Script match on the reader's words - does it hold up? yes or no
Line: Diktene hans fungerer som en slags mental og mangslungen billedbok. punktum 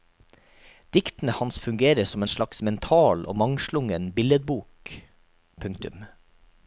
yes